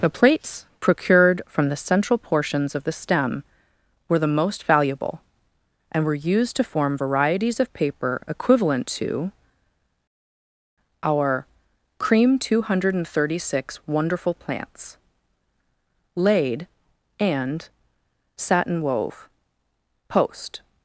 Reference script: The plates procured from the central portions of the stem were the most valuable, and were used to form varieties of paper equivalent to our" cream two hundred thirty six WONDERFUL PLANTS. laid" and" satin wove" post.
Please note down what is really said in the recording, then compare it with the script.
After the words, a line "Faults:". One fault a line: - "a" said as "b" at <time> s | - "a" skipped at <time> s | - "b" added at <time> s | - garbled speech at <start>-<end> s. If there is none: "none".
The plates procured from the central portions of the stem were the most valuable, and were used to form varieties of paper equivalent to our" cream two hundred thirty six WONDERFUL PLANTS. laid" and" satin wove" post.
Faults:
none